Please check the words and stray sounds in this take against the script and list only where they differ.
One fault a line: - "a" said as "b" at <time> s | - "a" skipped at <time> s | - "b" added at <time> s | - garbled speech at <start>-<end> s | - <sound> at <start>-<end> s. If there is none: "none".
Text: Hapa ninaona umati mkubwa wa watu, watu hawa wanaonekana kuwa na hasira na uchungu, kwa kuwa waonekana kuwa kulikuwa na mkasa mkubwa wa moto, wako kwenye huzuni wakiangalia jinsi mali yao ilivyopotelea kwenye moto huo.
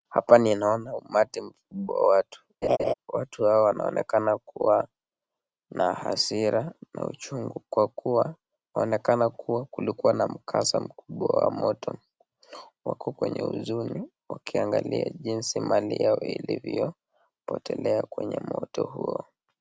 - laugh at 2.6-2.9 s